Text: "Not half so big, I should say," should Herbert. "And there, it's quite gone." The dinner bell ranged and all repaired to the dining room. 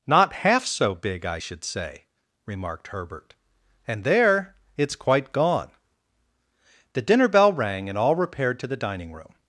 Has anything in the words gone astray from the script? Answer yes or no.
yes